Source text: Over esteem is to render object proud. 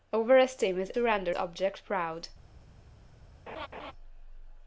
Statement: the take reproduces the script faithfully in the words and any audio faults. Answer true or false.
false